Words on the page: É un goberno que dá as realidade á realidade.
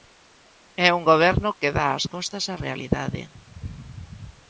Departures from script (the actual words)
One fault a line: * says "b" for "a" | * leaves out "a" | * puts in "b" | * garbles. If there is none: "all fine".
* says "costas" for "realidade"